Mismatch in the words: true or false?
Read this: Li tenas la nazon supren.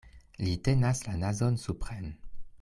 false